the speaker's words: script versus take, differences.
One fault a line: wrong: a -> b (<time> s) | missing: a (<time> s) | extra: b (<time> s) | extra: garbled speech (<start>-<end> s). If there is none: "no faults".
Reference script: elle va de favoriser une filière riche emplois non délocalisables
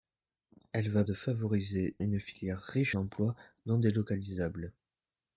no faults